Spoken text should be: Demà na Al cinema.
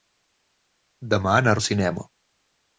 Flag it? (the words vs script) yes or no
no